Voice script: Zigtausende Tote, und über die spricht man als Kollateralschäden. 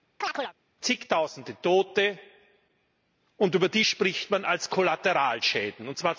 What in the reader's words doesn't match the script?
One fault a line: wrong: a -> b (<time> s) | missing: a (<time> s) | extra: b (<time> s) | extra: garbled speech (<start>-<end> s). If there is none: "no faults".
no faults